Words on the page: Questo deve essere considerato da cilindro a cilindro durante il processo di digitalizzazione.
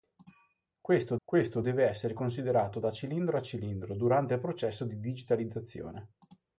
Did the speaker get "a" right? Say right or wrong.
right